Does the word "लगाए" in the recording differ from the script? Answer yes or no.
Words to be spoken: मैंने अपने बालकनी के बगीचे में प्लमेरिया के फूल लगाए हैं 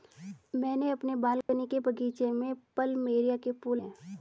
yes